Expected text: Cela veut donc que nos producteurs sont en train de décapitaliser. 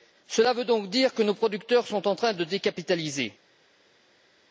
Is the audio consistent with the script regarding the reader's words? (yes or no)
no